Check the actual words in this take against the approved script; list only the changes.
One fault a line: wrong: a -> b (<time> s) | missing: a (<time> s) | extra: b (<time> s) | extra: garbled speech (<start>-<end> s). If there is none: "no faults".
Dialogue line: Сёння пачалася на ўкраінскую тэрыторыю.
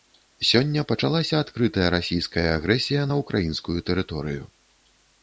extra: адкрытая расійская агрэсія (1.4 s)